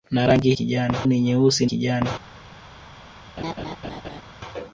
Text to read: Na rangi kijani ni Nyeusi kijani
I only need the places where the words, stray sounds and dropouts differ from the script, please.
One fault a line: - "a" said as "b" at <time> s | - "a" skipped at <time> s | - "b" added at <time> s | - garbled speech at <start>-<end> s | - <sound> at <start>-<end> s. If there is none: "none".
- laugh at 3.4-4.2 s